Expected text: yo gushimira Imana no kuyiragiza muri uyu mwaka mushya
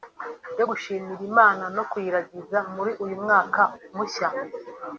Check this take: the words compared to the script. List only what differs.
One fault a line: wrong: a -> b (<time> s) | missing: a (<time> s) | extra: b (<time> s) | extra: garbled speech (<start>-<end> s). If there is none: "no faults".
no faults